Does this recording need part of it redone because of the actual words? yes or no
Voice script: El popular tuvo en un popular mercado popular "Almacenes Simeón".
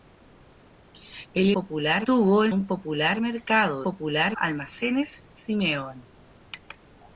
no